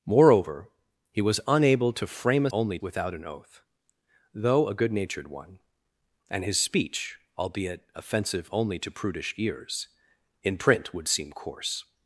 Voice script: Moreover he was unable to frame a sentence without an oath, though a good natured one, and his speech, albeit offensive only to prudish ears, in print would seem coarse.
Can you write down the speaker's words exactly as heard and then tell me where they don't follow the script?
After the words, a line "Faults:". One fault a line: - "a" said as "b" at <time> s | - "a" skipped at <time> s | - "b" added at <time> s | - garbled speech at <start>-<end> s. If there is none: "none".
Moreover he was unable to frame a only without an oath, though a good natured one, and his speech, albeit offensive only to prudish ears, in print would seem coarse.
Faults:
- "sentence" said as "only" at 2.5 s